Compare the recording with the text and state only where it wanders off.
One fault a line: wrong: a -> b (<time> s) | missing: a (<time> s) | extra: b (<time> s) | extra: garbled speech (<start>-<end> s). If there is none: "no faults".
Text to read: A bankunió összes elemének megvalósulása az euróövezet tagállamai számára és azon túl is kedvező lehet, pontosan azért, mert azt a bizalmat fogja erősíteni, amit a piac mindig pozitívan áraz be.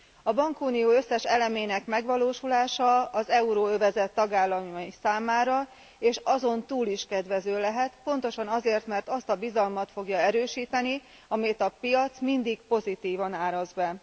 no faults